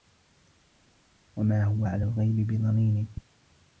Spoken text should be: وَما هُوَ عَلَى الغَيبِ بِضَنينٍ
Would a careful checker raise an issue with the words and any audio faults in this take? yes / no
no